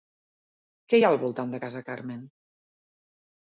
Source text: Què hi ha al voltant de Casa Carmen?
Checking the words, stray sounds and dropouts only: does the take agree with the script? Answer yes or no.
yes